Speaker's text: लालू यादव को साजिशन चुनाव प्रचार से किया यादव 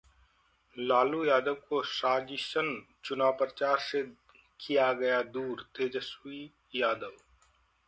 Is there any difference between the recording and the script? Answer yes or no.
yes